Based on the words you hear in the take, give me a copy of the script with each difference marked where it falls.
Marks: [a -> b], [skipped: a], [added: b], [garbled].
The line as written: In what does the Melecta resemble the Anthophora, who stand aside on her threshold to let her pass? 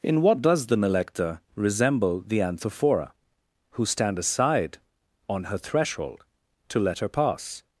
In what does the Melecta resemble the Anthophora, who stand aside on her threshold to let her pass?